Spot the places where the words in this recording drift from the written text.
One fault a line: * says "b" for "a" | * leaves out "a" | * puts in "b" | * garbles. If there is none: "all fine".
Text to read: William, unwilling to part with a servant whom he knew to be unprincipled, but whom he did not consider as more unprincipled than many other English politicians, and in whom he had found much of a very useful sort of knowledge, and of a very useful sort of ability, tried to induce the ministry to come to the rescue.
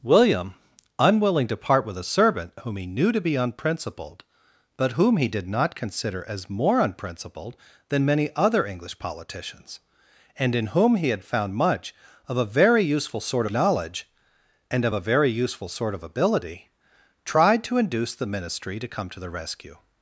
* leaves out "of"